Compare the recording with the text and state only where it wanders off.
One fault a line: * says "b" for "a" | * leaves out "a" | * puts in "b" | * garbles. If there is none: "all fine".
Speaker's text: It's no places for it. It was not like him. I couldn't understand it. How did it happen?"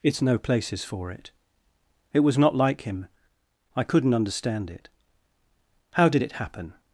all fine